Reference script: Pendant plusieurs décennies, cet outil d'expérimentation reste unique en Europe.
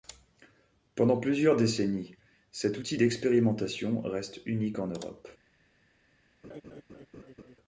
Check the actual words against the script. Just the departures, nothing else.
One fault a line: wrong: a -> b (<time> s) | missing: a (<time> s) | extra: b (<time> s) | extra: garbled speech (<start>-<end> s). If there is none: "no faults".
no faults